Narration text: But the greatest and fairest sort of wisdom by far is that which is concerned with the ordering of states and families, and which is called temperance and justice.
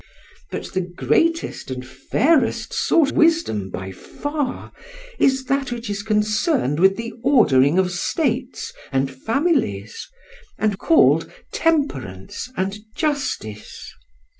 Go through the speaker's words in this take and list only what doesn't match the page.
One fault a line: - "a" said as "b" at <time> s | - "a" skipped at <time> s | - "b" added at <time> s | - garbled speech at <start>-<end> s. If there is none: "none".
- "of" skipped at 3.1 s
- "which is" skipped at 10.8 s